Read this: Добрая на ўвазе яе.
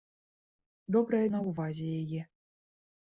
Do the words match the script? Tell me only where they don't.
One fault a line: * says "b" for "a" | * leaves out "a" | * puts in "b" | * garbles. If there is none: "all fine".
all fine